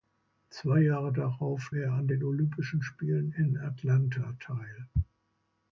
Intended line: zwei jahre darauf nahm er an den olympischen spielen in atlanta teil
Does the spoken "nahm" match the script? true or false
false